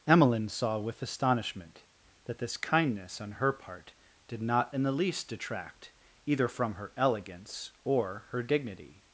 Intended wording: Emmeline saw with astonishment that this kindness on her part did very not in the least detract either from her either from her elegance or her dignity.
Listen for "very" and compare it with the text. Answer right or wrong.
wrong